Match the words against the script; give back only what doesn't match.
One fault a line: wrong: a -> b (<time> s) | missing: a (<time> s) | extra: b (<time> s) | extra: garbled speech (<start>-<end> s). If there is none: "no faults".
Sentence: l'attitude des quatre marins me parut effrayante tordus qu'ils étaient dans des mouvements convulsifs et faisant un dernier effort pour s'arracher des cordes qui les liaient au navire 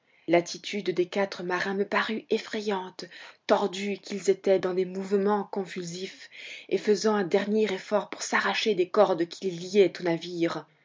no faults